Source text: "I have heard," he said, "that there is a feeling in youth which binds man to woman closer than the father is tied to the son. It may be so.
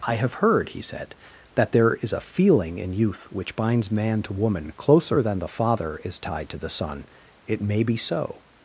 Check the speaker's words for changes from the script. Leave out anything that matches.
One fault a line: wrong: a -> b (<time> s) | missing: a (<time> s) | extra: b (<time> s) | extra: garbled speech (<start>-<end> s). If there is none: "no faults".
no faults